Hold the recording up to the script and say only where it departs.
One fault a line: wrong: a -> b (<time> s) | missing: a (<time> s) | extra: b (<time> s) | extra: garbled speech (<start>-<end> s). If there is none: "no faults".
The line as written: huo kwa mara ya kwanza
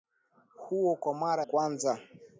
missing: ya (1.4 s)